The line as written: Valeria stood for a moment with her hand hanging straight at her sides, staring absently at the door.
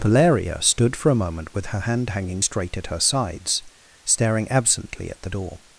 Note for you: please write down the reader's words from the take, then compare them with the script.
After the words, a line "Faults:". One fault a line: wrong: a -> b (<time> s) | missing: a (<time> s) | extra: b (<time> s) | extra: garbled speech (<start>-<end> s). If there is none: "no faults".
Valeria stood for a moment with her hand hanging straight at her sides, staring absently at the door.
Faults:
no faults